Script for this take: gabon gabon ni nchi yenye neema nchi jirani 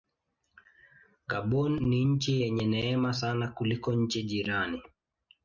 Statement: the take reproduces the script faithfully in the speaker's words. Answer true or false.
false